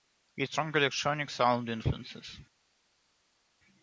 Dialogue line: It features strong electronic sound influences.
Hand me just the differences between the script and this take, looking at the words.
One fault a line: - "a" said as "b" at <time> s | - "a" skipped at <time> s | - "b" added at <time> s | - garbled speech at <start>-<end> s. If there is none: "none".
- "features" skipped at 0.5 s